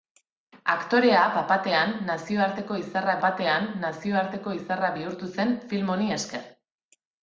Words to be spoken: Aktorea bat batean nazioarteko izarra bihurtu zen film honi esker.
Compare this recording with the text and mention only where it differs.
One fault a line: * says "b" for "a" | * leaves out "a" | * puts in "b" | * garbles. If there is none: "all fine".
* puts in "batean nazioarteko izarra"